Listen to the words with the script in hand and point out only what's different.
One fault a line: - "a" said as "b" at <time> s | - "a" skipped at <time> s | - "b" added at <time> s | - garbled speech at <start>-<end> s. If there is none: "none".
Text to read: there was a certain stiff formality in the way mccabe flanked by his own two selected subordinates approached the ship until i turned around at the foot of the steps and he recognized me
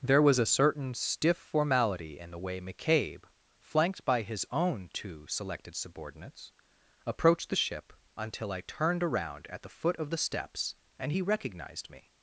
none